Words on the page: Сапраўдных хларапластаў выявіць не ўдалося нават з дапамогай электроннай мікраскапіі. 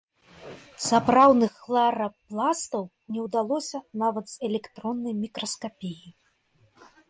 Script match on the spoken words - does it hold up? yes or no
no